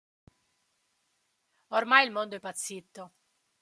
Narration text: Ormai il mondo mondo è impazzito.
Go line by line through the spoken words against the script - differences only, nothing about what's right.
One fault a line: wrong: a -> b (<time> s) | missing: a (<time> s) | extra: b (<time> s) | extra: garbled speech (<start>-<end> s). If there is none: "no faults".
missing: mondo (2.4 s)